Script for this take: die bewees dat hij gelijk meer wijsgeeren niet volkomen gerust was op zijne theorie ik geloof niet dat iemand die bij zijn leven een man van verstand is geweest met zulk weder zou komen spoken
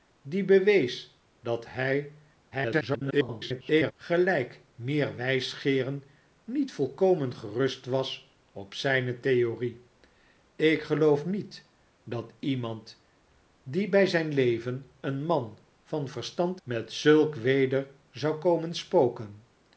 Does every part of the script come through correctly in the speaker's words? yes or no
no